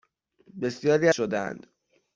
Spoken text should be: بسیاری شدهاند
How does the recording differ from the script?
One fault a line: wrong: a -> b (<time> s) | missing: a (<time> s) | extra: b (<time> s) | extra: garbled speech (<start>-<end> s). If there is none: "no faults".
no faults